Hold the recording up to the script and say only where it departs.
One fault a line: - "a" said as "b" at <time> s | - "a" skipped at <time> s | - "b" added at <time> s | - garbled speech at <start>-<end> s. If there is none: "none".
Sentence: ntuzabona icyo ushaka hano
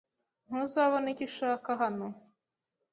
none